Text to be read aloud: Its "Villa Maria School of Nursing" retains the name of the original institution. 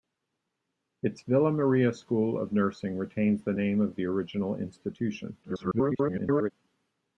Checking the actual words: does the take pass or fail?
fail